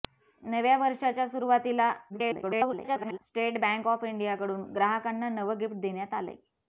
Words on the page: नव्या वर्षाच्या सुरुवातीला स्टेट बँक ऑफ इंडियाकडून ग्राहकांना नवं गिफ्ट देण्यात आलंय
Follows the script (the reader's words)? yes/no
no